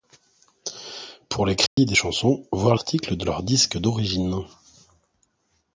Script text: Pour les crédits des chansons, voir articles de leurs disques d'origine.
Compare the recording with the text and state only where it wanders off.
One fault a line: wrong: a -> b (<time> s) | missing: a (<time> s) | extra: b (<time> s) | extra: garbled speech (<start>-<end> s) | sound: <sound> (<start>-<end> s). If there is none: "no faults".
sound: dropout (1.7-1.8 s)